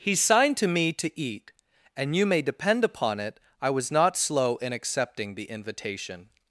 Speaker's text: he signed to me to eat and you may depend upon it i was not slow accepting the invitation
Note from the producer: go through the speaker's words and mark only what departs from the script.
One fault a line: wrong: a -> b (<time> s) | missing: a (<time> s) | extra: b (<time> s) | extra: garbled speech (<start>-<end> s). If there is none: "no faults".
extra: in (4.5 s)